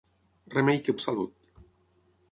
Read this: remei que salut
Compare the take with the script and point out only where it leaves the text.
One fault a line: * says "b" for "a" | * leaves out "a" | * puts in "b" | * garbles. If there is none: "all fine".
all fine